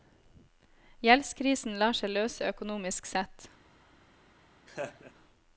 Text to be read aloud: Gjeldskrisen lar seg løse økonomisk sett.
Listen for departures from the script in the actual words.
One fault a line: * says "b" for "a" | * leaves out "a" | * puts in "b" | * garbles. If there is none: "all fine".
all fine